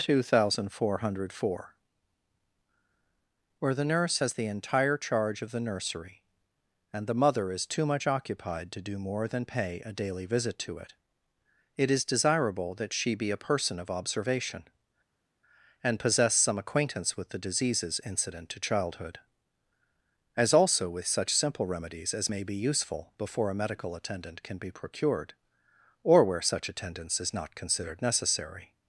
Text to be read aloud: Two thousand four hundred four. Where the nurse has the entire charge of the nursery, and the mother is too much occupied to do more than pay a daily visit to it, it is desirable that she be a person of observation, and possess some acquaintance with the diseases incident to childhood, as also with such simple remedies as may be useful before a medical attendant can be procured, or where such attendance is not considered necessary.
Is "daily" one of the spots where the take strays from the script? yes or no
no